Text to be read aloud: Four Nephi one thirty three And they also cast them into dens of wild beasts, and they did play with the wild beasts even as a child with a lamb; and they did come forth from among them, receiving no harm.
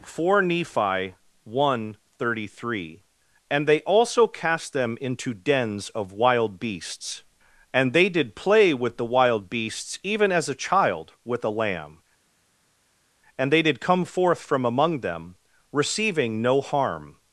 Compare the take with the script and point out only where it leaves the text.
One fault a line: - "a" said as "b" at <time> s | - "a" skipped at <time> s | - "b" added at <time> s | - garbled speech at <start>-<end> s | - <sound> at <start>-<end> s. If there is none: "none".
none